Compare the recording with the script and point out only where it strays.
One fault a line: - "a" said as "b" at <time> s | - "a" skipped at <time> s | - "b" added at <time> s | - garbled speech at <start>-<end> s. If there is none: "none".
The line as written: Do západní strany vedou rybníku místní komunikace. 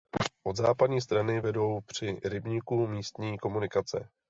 - "Do" said as "Od" at 0.4 s
- "při" added at 1.8 s